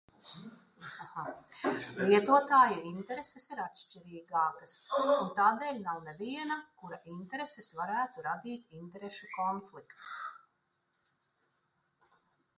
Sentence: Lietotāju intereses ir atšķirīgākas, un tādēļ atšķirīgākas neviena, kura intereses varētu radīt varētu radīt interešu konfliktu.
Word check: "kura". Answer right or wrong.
right